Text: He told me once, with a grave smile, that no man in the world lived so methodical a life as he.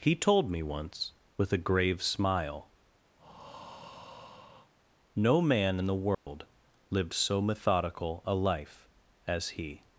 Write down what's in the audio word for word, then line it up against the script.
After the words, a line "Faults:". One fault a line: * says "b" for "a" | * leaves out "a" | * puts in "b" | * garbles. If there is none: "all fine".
He told me once, with a grave smile, no man in the world lived so methodical a life as he.
Faults:
* leaves out "that"